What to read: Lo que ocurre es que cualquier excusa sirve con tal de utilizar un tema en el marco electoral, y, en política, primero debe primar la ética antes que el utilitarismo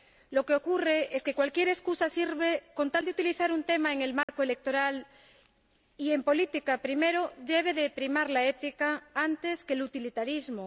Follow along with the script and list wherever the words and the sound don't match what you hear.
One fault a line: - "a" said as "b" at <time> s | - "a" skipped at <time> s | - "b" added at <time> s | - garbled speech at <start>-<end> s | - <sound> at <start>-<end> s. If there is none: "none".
- dropout at 4.2-4.3 s